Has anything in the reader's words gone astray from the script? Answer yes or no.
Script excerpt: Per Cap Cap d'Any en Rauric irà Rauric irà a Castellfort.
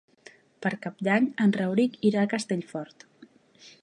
yes